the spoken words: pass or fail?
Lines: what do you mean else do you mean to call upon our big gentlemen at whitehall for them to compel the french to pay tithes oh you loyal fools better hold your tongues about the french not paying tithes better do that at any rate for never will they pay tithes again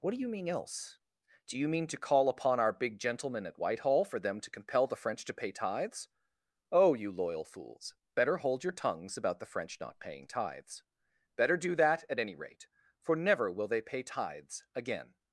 pass